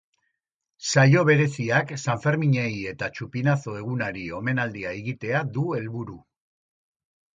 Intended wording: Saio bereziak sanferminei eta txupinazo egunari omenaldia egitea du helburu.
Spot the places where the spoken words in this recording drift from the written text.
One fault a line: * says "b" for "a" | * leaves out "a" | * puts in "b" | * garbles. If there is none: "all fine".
all fine